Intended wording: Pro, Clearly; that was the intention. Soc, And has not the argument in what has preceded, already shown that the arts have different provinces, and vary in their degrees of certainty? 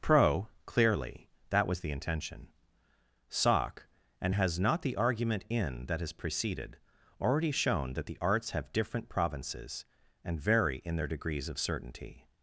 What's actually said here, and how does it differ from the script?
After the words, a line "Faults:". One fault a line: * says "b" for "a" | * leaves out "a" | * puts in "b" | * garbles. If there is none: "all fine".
Pro, Clearly; that was the intention. Soc, And has not the argument in that has preceded, already shown that the arts have different provinces, and vary in their degrees of certainty?
Faults:
* says "that" for "what"